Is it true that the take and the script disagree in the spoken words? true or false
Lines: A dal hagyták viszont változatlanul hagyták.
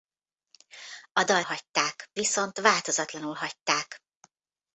false